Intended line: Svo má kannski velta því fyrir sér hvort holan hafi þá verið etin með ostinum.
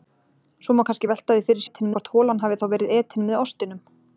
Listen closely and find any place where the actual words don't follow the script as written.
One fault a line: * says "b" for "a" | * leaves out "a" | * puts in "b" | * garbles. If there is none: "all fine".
* says "etin" for "sér"